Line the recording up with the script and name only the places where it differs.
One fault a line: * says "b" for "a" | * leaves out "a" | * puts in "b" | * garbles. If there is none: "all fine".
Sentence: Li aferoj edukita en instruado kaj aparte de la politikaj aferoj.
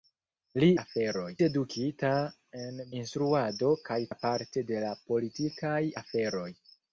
all fine